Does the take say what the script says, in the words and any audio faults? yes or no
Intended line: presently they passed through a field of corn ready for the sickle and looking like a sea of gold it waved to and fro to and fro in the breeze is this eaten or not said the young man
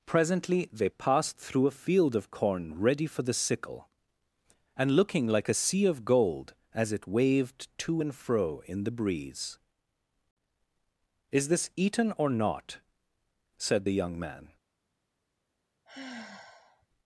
no